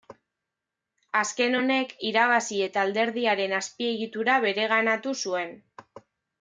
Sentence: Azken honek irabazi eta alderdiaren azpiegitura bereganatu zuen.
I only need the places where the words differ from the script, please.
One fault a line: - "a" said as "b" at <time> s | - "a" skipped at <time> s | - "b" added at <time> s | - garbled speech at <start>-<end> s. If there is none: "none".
none